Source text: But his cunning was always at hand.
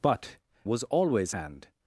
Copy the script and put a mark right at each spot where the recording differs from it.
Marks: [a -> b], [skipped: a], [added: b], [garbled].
But [skipped: his cunning] was always [skipped: at] hand.